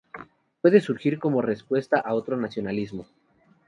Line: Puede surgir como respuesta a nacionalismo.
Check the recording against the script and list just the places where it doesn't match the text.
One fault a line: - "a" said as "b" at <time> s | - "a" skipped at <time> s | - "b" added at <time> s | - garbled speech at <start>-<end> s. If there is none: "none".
- "otro" added at 2.1 s